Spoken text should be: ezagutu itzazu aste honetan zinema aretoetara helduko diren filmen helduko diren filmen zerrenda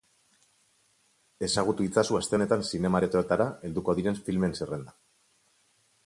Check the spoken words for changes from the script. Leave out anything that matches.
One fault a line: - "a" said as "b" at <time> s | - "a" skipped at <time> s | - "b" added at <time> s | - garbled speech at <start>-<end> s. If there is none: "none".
- "helduko diren filmen" skipped at 4.6 s